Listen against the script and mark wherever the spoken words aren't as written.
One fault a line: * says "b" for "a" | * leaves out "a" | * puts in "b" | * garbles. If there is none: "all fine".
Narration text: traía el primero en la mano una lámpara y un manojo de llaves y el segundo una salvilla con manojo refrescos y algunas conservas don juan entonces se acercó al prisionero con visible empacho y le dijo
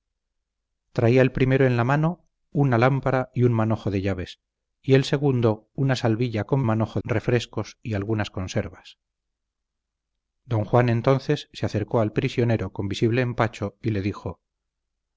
all fine